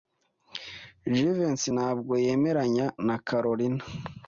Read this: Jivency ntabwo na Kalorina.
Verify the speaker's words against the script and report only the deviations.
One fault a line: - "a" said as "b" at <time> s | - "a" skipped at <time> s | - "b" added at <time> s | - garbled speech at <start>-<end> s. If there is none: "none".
- "yemeranya" added at 2.3 s